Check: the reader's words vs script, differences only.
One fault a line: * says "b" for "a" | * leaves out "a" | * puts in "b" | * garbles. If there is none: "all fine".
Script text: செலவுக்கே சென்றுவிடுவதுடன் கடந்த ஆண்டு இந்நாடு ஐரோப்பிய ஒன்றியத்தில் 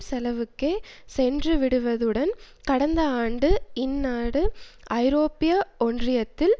all fine